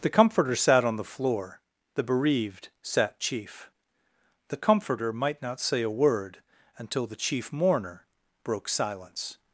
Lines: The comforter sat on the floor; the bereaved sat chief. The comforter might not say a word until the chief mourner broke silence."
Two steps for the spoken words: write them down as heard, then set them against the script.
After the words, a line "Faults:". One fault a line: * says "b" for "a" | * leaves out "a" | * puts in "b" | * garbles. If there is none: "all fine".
The comforter sat on the floor; the bereaved sat chief. The comforter might not say a word until the chief mourner broke silence."
Faults:
all fine